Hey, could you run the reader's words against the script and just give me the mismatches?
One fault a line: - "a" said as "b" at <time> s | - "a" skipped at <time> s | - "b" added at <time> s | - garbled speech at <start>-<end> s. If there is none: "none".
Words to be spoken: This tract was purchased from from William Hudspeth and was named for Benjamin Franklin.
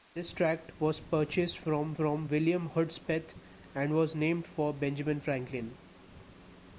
none